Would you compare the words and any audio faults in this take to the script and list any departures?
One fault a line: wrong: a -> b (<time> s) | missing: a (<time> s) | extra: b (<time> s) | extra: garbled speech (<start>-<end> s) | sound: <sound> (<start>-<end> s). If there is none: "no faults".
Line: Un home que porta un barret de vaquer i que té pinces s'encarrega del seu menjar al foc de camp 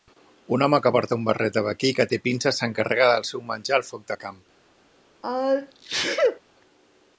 sound: sneeze (5.2-6.4 s)